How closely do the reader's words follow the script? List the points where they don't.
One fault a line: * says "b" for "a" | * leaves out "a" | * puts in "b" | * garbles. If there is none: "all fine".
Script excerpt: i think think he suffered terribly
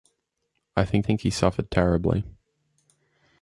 all fine